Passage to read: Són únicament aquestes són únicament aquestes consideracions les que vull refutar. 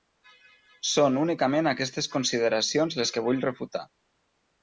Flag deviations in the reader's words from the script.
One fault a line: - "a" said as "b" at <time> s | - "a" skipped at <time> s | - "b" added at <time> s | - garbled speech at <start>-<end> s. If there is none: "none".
- "són únicament aquestes" skipped at 2.1 s